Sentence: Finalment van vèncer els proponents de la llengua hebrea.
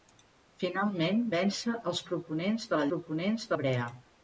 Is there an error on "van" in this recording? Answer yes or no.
yes